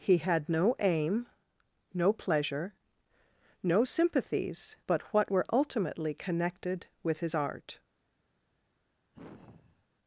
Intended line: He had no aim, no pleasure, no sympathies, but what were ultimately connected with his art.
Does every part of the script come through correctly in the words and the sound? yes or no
no